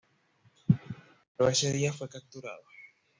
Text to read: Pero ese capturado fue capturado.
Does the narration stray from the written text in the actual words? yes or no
yes